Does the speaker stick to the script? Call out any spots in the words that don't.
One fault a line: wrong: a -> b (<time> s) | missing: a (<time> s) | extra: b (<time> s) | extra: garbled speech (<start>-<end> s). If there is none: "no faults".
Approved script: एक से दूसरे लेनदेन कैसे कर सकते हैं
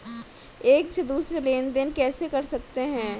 no faults